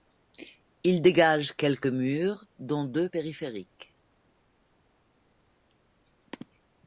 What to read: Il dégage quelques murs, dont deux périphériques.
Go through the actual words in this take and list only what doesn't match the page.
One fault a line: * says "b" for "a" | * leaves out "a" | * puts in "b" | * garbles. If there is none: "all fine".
all fine